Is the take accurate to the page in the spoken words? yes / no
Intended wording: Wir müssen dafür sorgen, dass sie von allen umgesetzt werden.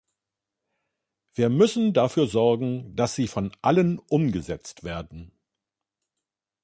yes